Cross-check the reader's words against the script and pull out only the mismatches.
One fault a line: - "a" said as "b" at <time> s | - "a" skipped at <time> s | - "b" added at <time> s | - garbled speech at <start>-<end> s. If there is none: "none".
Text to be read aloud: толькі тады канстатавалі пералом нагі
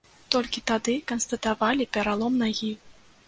none